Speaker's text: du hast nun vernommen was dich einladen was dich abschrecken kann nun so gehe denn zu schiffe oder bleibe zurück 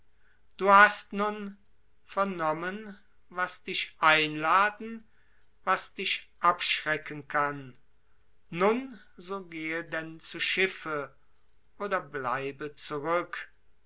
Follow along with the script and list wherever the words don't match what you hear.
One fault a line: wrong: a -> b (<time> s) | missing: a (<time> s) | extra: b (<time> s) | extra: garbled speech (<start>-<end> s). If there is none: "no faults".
no faults